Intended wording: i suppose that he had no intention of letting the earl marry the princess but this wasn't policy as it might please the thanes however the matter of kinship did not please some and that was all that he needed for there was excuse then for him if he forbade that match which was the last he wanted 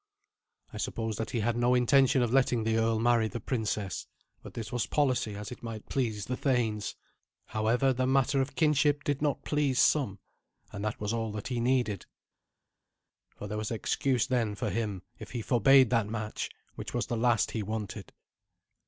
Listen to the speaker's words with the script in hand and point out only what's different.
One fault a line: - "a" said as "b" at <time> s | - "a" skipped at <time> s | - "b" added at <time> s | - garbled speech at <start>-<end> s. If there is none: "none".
- "wasn't" said as "was" at 4.7 s